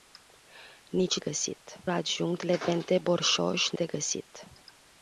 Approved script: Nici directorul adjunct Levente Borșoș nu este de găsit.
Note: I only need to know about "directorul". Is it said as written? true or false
false